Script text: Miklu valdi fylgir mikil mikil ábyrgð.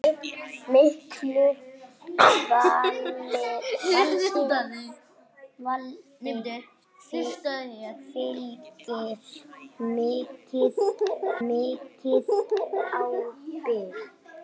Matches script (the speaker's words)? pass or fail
pass